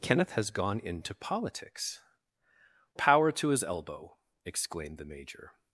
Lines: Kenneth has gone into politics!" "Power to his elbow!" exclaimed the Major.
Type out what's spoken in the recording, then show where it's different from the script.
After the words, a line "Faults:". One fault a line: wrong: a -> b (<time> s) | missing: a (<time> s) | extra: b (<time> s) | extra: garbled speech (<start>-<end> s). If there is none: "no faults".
Kenneth has gone into politics!" "Power to his elbow!" exclaimed the Major.
Faults:
no faults